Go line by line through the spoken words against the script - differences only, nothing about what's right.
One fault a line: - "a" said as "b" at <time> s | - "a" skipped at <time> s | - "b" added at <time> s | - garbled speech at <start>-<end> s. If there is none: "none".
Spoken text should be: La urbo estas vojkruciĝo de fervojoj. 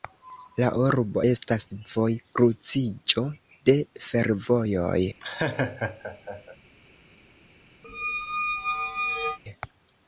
none